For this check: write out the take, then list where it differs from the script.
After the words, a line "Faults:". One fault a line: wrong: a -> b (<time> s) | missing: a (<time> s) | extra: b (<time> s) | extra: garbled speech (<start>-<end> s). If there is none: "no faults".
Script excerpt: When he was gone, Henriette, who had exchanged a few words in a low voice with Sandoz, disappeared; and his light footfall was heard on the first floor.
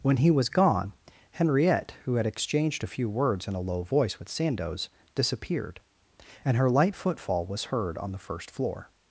When he was gone, Henriette, who had exchanged a few words in a low voice with Sandoz, disappeared; and her light footfall was heard on the first floor.
Faults:
wrong: his -> her (6.5 s)